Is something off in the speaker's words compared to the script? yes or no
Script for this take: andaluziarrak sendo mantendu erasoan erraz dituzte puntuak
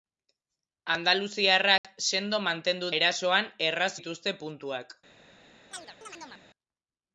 no